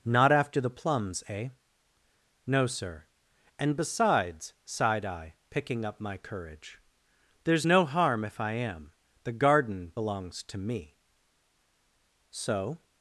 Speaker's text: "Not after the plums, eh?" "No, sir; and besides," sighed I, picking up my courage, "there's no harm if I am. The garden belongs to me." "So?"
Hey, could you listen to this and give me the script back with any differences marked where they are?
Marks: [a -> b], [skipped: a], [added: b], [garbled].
"Not after the plums, eh?" "No, sir; and besides," sighed I, picking up my courage, "there's no harm if I am. The garden belongs to me." "So?"